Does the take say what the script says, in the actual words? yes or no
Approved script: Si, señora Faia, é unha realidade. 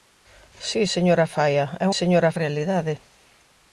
no